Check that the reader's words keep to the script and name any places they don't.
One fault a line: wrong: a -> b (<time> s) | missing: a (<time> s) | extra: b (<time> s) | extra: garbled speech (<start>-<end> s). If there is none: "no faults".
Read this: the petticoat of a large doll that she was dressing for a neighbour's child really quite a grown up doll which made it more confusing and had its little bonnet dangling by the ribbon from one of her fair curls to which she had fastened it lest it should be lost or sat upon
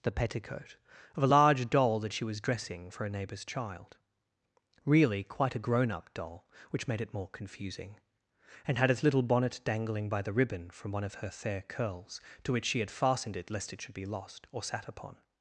no faults